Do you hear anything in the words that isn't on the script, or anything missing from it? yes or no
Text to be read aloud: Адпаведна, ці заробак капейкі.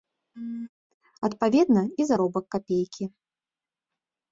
yes